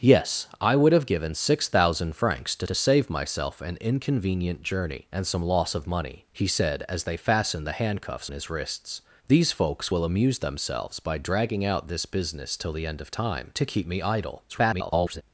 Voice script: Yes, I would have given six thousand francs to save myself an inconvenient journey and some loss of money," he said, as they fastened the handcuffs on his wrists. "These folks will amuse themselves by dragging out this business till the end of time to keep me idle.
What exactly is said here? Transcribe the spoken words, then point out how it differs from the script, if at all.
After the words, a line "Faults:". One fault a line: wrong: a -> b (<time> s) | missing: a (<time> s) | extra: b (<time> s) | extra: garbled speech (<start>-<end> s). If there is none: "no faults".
Yes, I would have given six thousand francs to to save myself an inconvenient journey and some loss of money," he said, as they fastened the handcuffs his wrists. "These folks will amuse themselves by dragging out this business till the end of time to keep me idle. [garbled]
Faults:
extra: to (2.6 s)
missing: on (8.3 s)
extra: garbled speech (14.5-15.2 s)